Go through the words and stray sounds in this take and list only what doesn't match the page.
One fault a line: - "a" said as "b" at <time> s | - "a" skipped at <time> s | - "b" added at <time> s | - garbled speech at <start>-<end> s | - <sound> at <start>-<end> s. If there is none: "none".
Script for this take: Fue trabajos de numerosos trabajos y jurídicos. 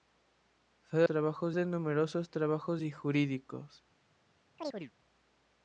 - chirp at 4.6-4.9 s